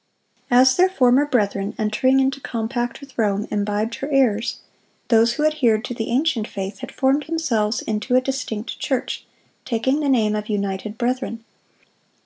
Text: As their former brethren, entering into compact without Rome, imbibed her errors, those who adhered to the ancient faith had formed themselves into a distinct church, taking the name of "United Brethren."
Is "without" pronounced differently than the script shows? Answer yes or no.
yes